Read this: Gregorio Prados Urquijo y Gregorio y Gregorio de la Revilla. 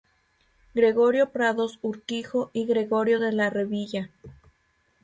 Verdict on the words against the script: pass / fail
fail